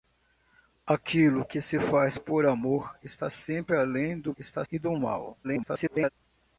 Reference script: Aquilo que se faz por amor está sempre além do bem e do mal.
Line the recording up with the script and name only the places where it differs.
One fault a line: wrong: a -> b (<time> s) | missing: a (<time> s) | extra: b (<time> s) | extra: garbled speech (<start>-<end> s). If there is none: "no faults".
wrong: bem -> está (4.4 s)
extra: garbled speech (5.4-6.1 s)